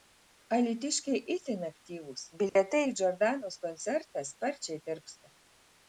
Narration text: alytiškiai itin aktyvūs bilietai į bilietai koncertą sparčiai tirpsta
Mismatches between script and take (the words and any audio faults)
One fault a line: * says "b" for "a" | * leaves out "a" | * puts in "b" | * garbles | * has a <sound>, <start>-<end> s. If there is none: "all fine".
* has a dropout, 2.5-2.6 s
* says "džordanos" for "bilietai"